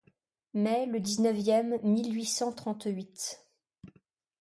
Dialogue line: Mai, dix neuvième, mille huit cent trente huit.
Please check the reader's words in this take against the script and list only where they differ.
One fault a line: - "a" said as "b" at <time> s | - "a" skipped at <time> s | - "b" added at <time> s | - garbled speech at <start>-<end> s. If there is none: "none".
- "le" added at 0.9 s